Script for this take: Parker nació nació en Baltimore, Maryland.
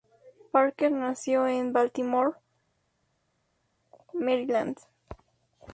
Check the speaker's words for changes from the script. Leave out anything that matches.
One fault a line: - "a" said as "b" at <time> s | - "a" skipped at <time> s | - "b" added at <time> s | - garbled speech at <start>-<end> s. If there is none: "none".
- "nació" skipped at 1.4 s